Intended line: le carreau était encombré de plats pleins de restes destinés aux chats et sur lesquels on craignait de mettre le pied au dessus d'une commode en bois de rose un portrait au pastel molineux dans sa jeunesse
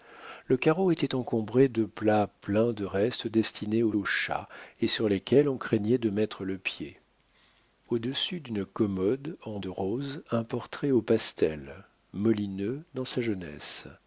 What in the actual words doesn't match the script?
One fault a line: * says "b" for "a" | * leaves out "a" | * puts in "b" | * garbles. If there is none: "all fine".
* puts in "aux"
* leaves out "bois"